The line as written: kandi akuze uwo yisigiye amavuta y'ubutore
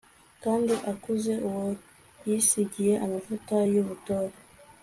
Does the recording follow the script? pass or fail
pass